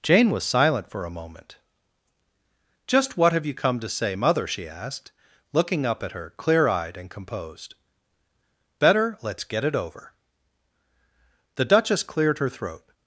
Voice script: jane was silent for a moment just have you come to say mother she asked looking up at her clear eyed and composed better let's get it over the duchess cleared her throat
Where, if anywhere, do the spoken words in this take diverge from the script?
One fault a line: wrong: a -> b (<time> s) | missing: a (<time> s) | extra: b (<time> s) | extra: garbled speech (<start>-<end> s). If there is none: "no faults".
extra: what (3.2 s)